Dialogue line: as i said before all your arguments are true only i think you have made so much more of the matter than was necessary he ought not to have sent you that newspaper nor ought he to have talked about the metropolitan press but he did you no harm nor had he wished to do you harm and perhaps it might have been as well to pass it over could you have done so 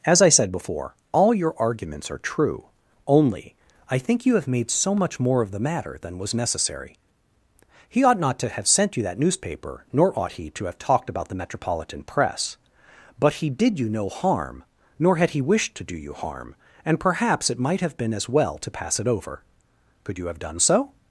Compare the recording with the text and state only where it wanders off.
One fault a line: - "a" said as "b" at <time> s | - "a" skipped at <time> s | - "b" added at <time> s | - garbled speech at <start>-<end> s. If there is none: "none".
none